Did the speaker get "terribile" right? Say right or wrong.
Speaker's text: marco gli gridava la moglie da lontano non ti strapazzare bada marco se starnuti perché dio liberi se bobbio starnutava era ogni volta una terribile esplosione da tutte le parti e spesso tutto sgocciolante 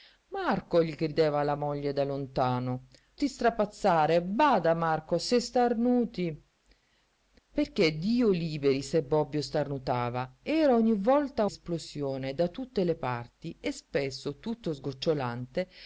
wrong